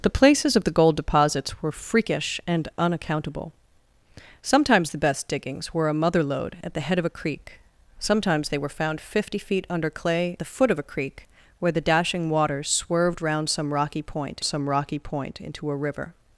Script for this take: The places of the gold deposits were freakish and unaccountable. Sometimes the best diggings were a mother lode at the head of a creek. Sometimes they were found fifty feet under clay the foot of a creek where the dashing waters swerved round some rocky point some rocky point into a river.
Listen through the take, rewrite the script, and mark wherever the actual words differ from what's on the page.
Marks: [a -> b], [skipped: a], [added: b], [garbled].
The places of the gold deposits were freakish and unaccountable. Sometimes the best diggings were a mother lode at the head of a creek. Sometimes they were found fifty feet under clay the foot of a creek where the dashing waters swerved round some rocky point some rocky point into a river.